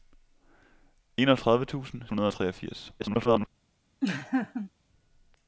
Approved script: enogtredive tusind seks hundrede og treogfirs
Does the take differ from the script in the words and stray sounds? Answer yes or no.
yes